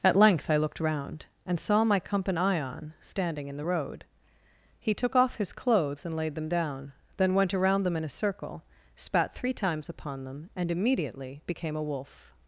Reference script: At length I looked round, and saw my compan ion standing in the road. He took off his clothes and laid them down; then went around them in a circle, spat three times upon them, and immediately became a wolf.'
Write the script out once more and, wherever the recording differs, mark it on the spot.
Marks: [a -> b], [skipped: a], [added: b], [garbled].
At length I looked round, and saw my compan ion standing in the road. He took off his clothes and laid them down; then went around them in a circle, spat three times upon them, and immediately became a wolf.'